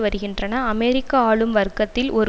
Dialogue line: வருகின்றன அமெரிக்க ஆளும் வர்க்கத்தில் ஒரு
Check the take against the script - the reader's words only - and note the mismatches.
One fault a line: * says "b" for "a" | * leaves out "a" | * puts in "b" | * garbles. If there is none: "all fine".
all fine